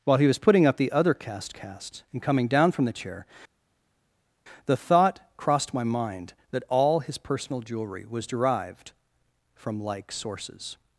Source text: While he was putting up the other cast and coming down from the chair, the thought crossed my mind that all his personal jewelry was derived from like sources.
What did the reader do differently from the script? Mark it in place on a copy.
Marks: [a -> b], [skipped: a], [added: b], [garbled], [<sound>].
While he was putting up the other cast [added: cast] and coming down from the chair, the thought crossed my mind that all his personal jewelry was derived from like sources.